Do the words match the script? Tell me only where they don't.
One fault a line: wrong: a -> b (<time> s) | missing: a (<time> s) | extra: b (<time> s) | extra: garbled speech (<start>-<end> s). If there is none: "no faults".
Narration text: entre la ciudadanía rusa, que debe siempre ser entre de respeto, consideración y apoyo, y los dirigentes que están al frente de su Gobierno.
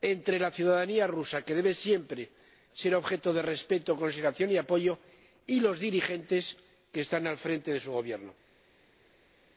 wrong: entre -> objeto (3.0 s)